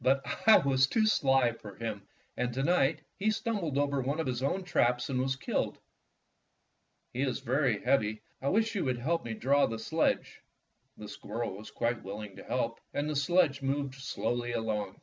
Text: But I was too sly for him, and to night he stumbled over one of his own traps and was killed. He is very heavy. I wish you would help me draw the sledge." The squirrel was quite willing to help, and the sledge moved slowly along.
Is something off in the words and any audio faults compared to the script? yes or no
no